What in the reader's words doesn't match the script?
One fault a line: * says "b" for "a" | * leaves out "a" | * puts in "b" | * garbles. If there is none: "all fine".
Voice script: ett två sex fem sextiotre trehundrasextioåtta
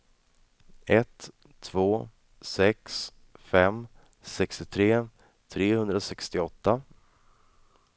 all fine